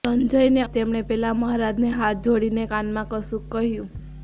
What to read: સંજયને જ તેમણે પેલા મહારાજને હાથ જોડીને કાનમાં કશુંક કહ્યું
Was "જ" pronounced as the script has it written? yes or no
yes